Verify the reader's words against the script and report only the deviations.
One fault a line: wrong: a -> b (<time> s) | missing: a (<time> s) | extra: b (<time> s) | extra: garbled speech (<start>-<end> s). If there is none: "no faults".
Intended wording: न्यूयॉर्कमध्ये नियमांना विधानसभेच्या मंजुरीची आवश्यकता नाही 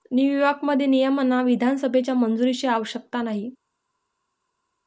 no faults